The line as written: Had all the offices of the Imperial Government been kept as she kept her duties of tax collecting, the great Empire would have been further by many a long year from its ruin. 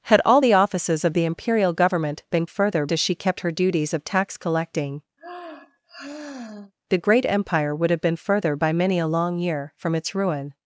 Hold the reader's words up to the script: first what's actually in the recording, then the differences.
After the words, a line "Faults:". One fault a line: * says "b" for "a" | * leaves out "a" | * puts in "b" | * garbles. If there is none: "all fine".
Had all the offices of the Imperial Government been further as she kept her duties of tax collecting, the great Empire would have been further by many a long year from its ruin.
Faults:
* says "further" for "kept"